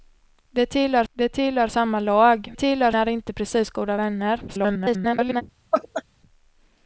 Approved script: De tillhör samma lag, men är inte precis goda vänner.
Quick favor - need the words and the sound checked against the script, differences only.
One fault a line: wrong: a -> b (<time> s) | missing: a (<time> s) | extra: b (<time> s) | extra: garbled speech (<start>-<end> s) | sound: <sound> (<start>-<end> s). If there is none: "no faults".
extra: de tillhör (1.1 s)
wrong: men -> tillhör (2.5 s)
extra: garbled speech (4.5-5.4 s)
sound: laugh (5.7-6.0 s)